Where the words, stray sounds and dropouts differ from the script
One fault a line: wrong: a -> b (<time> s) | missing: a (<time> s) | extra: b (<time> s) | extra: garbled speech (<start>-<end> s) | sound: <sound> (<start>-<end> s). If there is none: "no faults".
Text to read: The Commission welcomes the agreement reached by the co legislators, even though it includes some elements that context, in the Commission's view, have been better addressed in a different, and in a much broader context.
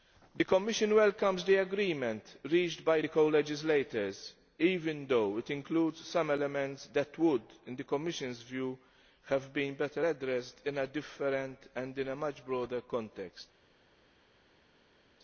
wrong: context -> would (7.2 s)